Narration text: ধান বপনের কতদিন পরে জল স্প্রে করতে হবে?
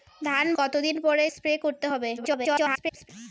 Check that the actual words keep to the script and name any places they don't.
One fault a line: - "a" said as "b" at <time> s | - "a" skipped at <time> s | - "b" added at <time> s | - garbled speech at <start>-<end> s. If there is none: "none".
- "বপনের" skipped at 0.5 s
- "জল" skipped at 1.2 s
- garbled speech at 2.2-3.1 s